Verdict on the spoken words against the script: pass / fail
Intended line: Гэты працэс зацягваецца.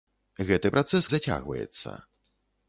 pass